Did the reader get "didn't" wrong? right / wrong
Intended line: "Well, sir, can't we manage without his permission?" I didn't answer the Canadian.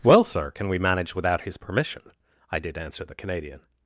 wrong